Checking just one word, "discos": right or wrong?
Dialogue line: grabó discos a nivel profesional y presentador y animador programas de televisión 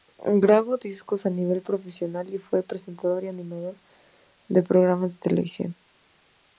right